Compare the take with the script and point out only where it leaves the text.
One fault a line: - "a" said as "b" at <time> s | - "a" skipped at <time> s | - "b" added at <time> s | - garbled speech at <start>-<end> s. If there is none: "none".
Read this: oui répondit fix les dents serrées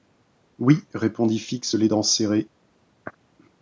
none